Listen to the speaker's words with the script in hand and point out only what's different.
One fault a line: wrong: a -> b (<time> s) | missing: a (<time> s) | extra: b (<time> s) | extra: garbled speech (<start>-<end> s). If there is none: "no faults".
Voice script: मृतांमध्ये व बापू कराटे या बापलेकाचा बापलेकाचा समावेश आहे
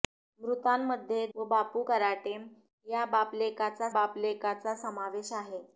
no faults